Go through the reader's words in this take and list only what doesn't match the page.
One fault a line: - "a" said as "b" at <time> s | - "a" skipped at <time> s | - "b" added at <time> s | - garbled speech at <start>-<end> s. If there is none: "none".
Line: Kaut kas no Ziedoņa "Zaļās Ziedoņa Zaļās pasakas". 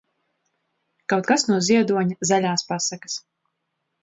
- "Ziedoņa Zaļās" skipped at 2.7 s